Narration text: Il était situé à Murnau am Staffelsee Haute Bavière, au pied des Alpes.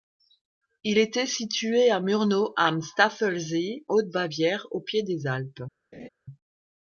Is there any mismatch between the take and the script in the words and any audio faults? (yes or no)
yes